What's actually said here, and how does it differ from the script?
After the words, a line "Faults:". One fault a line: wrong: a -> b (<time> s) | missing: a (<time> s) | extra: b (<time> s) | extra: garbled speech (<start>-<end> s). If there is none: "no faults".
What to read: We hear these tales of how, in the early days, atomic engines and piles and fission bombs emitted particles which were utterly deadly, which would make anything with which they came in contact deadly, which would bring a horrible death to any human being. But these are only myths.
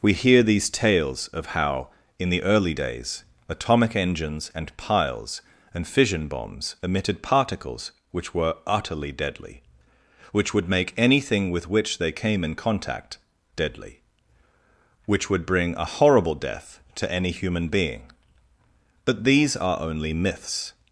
We hear these tales of how, in the early days, atomic engines and piles and fission bombs emitted particles which were utterly deadly, which would make anything with which they came in contact deadly, which would bring a horrible death to any human being. But these are only myths.
Faults:
no faults